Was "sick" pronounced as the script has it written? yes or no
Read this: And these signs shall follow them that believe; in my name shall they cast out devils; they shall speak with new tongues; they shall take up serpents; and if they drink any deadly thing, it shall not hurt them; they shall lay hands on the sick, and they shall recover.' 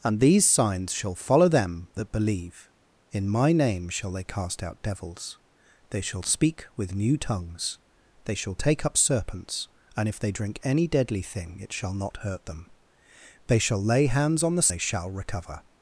no